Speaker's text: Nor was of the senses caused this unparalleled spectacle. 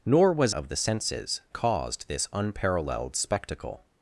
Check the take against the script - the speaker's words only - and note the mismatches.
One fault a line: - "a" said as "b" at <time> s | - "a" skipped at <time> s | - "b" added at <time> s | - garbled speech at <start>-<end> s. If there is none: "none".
none